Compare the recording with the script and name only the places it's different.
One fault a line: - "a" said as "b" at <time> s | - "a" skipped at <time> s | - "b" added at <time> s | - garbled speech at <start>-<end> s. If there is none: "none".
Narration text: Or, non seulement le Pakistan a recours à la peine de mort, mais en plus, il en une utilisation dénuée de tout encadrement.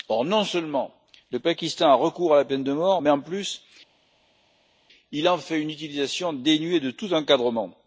- "fait" added at 5.4 s